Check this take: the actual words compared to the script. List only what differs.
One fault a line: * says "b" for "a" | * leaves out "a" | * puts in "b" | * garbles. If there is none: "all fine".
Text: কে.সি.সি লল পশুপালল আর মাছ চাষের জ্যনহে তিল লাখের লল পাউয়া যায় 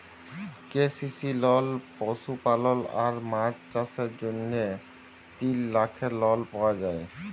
all fine